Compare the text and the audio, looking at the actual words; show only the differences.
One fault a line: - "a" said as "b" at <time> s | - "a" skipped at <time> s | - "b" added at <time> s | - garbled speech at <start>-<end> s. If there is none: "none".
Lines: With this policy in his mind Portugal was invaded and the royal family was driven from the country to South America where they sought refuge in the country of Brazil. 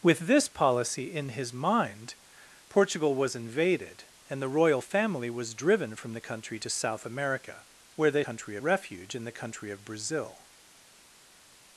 - "sought" said as "country" at 8.2 s